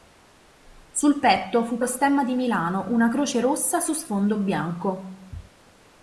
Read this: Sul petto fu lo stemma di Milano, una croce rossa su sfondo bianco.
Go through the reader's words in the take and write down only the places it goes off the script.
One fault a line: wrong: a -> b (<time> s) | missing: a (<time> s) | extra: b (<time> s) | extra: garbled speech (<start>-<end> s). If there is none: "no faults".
no faults